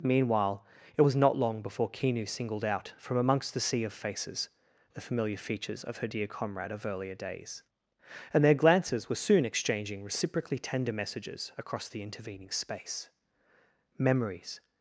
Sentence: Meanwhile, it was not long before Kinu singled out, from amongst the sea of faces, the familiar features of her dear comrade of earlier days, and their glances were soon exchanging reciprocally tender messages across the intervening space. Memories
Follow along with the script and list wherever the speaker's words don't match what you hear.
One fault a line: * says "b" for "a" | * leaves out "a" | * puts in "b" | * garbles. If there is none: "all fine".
all fine